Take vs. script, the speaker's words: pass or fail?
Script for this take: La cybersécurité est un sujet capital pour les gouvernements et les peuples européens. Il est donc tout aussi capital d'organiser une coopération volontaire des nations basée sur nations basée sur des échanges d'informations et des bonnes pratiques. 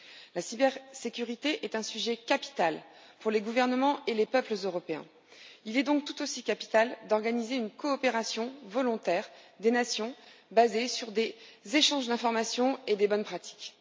fail